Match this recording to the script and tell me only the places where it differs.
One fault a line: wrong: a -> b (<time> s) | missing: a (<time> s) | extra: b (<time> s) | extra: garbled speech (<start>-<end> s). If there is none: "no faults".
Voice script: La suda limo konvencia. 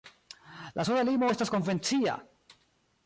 extra: estas (1.3 s)